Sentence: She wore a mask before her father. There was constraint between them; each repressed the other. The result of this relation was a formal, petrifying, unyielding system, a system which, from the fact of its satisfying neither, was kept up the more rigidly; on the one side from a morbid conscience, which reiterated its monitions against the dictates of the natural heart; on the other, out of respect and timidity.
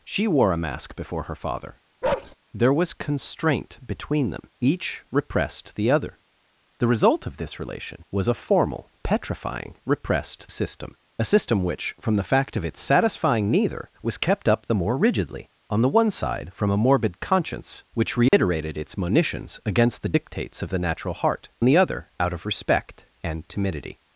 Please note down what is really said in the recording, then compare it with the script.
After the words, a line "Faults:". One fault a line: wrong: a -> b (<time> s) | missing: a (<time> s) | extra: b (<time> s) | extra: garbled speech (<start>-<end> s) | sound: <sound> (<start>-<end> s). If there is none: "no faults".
She wore a mask before her father. There was constraint between them; each repressed the other. The result of this relation was a formal, petrifying, repressed system, a system which, from the fact of its satisfying neither, was kept up the more rigidly; on the one side from a morbid conscience, which reiterated its monitions against the dictates of the natural heart; the other, out of respect and timidity.
Faults:
sound: bark (2.0-2.4 s)
wrong: unyielding -> repressed (9.8 s)
sound: dropout (18.3-18.3 s)
missing: on (21.5 s)